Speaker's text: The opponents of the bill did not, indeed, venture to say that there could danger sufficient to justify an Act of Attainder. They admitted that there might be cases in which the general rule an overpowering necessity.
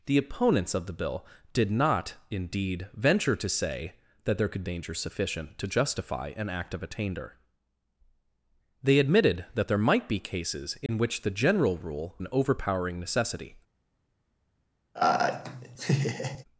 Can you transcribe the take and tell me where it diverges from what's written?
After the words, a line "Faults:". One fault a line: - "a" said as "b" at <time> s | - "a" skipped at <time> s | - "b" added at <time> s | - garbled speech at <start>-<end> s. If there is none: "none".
The opponents of the bill did not, indeed, venture to say that there could danger sufficient to justify an Act of Attainder. They admitted that there might be cases in which the general rule an overpowering necessity.
Faults:
none